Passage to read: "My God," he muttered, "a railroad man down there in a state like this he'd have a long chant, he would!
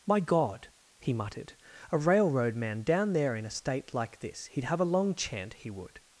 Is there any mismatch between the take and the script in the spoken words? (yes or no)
no